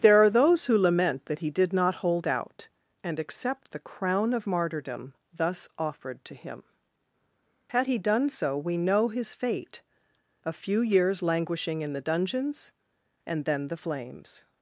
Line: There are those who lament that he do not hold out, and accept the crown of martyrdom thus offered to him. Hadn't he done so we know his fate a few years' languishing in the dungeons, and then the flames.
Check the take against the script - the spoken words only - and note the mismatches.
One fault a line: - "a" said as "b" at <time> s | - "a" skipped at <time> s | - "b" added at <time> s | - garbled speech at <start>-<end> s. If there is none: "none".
- "do" said as "did" at 1.5 s
- "Hadn't" said as "Had" at 7.7 s